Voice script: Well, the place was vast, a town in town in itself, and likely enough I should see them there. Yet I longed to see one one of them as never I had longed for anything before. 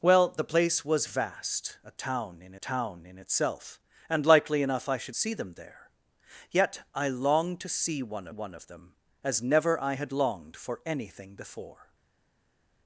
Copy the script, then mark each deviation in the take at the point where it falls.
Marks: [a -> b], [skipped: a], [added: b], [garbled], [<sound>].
Well, the place was vast, a town in town in itself, and likely enough I should see them there. Yet I longed to see one one of them as never I had longed for anything before.